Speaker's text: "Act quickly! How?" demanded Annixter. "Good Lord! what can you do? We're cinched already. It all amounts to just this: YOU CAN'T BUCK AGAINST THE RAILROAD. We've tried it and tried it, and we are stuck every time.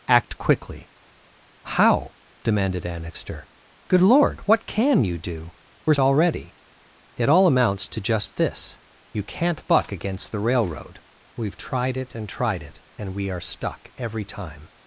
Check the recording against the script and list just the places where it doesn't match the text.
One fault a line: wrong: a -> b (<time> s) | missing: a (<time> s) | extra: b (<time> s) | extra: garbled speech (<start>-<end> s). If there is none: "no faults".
missing: cinched (5.9 s)